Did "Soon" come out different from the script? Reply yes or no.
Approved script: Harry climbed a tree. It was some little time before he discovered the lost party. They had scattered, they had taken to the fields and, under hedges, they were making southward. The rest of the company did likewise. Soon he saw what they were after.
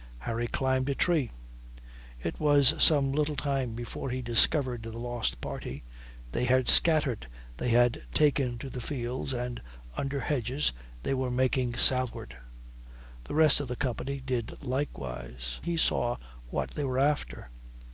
yes